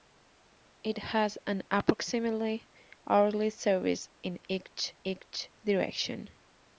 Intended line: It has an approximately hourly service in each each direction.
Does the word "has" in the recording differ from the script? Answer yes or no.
no